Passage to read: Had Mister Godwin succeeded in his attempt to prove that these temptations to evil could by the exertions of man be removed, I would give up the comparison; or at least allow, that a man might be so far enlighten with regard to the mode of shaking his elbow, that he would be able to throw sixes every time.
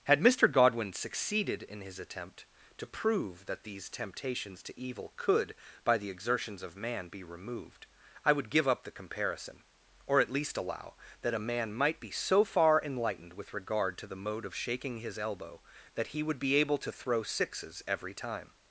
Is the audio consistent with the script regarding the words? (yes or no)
no